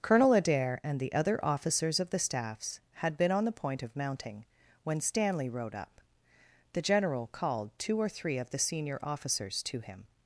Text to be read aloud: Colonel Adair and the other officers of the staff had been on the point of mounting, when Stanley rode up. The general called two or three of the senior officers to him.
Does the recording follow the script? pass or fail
fail